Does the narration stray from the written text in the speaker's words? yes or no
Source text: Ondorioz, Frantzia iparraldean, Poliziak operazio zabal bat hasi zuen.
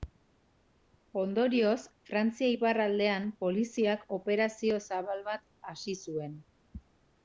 no